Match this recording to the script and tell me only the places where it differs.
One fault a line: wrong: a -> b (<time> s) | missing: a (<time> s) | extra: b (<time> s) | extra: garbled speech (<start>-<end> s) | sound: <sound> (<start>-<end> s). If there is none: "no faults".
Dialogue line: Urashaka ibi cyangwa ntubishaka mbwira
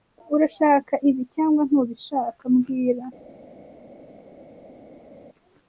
no faults